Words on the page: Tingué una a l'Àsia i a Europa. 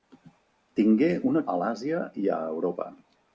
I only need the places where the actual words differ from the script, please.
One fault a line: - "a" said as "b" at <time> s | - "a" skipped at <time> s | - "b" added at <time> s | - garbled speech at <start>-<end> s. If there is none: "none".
none